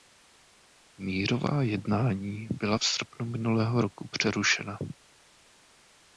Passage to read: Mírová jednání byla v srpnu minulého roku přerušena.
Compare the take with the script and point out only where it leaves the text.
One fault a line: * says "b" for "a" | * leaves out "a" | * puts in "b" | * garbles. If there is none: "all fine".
all fine